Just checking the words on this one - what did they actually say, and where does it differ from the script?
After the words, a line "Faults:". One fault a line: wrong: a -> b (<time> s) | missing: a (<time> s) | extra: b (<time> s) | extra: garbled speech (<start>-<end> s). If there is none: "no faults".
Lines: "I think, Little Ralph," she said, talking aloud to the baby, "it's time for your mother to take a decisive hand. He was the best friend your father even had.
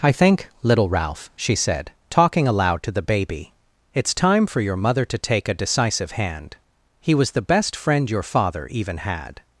"I think, Little Ralph," she said, talking aloud to the baby, "it's time for your mother to take a decisive hand. He was the best friend your father even had.
Faults:
no faults